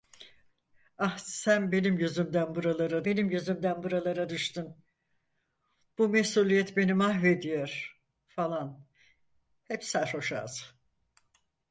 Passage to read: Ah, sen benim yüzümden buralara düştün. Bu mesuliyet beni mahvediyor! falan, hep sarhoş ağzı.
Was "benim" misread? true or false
false